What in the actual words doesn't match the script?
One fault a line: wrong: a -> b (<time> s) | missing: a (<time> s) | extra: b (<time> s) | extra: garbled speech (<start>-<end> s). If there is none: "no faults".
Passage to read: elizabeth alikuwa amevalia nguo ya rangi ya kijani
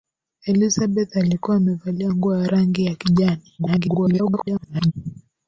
extra: garbled speech (3.6-4.9 s)